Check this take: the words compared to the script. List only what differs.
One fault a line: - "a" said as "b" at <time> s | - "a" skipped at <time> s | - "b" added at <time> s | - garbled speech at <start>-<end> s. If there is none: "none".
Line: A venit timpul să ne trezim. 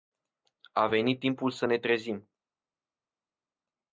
none